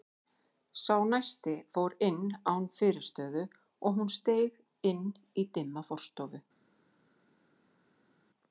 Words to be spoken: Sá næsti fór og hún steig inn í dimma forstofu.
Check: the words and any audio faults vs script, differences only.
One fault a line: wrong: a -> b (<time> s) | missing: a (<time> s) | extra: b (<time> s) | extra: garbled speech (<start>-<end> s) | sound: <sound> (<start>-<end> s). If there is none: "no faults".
extra: inn án fyrirstöðu (2.1 s)